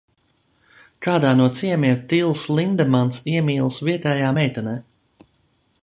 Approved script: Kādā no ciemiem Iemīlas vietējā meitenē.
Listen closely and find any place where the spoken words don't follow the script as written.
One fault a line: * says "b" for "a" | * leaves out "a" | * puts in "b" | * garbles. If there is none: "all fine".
* puts in "Tils Lindemans"